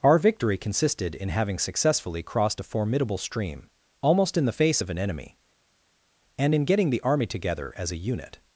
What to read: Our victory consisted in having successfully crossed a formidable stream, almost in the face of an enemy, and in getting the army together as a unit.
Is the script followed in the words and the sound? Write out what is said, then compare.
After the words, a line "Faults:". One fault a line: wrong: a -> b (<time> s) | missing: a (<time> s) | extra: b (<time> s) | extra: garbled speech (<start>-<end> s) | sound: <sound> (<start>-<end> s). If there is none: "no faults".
Our victory consisted in having successfully crossed a formidable stream, almost in the face of an enemy, and in getting the army together as a unit.
Faults:
no faults